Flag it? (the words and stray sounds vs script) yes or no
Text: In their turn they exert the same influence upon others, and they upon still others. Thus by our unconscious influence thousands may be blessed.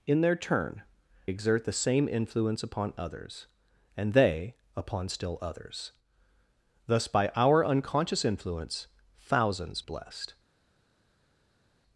yes